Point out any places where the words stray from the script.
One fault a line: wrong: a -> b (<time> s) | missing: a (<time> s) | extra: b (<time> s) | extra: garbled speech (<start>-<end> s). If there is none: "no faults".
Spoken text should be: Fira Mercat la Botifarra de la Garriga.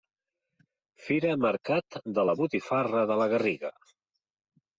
extra: de (2.1 s)